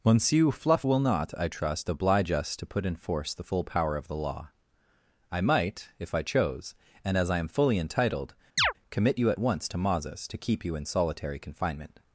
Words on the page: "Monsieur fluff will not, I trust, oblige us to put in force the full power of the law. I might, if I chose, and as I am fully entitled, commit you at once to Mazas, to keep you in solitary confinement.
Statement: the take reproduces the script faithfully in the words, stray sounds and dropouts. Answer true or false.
false